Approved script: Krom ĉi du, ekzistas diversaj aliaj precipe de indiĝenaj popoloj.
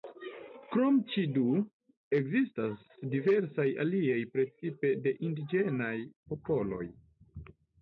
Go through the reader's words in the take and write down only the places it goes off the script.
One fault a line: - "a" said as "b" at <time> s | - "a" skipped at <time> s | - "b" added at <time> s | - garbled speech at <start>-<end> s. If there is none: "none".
none